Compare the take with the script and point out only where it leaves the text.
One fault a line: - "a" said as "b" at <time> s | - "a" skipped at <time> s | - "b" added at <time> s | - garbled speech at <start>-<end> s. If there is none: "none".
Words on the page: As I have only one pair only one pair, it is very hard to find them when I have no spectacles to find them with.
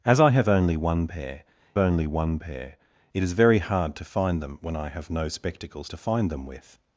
none